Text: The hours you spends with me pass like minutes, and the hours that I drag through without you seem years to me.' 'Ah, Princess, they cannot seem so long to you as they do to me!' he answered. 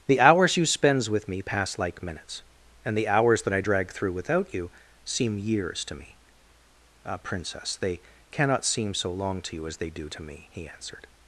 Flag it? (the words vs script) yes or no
no